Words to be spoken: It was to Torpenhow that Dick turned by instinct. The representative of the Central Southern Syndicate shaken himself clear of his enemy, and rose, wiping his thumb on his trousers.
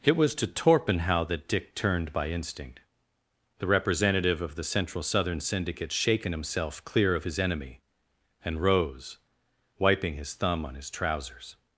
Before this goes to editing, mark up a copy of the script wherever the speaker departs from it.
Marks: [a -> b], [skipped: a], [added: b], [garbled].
It was to Torpenhow that Dick turned by instinct. The representative of the Central Southern Syndicate shaken himself clear of his enemy, and rose, wiping his thumb on his trousers.